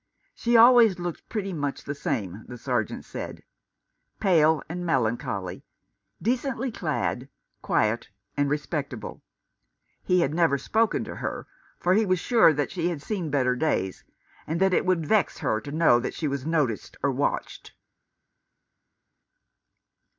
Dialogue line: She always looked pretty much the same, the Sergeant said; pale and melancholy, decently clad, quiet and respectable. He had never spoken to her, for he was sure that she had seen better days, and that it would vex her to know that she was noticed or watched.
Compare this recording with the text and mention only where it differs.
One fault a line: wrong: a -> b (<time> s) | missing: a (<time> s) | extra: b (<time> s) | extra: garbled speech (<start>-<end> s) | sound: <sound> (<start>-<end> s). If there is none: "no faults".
no faults